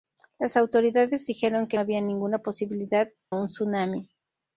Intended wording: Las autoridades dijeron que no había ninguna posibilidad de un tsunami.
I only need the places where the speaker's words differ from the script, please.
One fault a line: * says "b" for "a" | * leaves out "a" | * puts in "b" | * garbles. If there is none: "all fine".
* leaves out "no"
* leaves out "de"